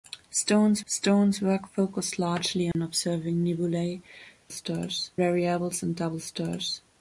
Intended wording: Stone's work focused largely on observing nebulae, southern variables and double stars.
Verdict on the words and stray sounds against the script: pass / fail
fail